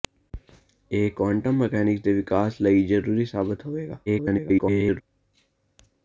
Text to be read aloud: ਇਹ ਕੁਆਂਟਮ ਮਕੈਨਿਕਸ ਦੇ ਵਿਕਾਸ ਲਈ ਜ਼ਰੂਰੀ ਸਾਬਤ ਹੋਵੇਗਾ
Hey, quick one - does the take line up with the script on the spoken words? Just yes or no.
no